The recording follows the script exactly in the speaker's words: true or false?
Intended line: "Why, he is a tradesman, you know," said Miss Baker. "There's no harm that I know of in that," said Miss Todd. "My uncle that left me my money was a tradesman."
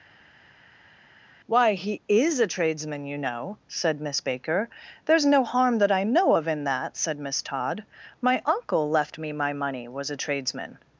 false